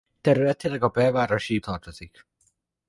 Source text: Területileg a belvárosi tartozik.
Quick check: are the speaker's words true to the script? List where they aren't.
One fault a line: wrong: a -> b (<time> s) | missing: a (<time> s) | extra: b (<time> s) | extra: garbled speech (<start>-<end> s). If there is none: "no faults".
no faults